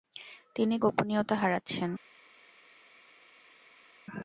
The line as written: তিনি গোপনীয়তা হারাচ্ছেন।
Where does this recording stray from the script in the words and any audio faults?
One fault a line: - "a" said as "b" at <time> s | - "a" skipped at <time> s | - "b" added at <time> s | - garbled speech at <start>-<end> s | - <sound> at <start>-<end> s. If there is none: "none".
none